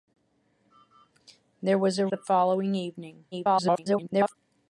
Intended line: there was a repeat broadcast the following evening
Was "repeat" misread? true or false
true